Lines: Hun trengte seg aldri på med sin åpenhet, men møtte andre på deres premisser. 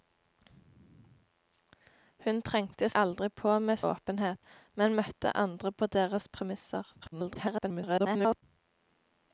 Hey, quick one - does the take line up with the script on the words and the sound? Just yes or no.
no